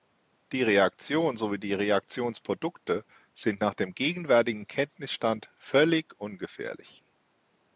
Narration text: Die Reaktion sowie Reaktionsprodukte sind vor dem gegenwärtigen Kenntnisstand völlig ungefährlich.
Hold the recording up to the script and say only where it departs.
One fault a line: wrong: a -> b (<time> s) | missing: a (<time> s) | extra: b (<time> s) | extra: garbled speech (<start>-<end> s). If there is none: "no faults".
extra: die (1.6 s)
wrong: vor -> nach (3.6 s)